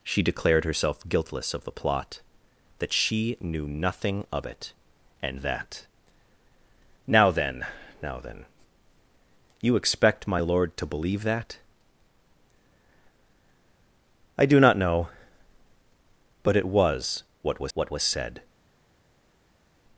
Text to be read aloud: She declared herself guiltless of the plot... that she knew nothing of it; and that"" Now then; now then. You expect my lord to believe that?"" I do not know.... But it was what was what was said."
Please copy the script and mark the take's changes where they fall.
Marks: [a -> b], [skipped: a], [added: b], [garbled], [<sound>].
She declared herself guiltless of the plot... that she knew nothing of it; and that"" Now then; now then. You expect my lord to believe that?"" I do not know.... But it was what was what was said."